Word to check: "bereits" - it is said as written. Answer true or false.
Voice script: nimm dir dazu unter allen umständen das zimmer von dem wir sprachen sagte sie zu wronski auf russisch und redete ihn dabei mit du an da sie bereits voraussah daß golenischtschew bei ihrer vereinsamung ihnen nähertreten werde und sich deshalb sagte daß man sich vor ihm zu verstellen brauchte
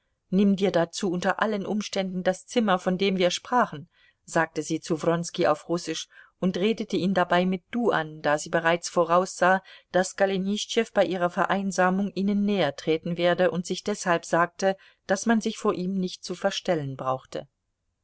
true